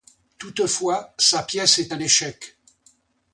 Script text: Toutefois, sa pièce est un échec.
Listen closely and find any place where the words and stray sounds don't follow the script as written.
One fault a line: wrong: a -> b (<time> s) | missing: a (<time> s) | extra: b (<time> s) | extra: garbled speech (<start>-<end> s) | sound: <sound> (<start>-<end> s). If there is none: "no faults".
no faults